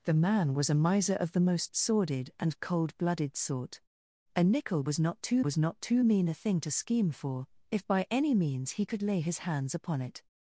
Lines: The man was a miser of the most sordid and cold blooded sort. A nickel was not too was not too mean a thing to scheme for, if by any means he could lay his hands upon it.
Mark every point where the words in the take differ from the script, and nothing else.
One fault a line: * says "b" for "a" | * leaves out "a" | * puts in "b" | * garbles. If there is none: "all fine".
all fine